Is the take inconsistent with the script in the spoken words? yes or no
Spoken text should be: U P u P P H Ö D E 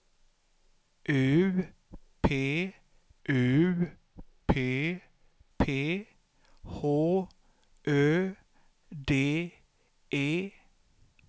no